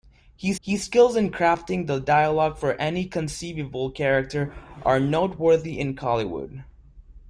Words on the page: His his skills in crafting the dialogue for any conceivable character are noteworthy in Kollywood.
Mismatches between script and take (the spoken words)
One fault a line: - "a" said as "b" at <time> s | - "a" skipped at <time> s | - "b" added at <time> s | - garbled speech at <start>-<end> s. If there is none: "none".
none